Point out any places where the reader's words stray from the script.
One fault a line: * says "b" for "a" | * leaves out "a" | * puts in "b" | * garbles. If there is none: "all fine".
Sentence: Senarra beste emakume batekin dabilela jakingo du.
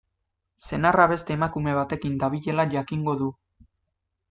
all fine